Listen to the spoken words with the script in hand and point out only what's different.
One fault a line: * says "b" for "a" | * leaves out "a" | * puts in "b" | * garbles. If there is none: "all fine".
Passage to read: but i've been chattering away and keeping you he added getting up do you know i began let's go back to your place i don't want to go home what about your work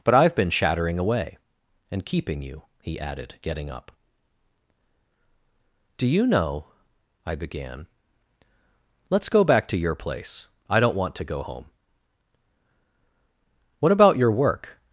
all fine